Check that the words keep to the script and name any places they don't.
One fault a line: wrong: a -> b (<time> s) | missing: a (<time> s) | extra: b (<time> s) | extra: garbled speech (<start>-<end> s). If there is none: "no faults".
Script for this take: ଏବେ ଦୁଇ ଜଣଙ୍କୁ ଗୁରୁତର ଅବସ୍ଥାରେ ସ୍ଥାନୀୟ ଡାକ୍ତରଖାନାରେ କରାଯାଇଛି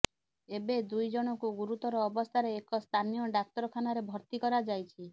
extra: ଏକ (2.6 s)
extra: ଭର୍ତ୍ତି (4.1 s)